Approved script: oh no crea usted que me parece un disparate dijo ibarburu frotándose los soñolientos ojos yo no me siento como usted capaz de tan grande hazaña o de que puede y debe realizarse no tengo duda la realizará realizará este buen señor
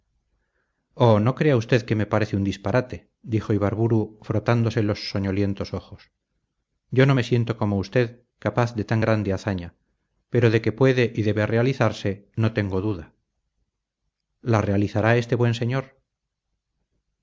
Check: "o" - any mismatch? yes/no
yes